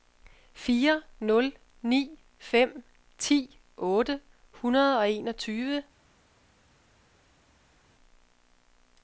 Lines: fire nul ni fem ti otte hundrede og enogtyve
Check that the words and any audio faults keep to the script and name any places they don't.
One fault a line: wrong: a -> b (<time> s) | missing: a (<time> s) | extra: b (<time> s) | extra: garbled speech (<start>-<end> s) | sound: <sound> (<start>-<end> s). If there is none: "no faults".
no faults